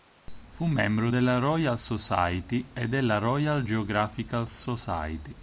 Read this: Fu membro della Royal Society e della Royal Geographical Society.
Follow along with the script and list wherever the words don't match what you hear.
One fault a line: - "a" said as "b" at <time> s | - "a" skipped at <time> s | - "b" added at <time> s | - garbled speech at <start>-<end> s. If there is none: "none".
none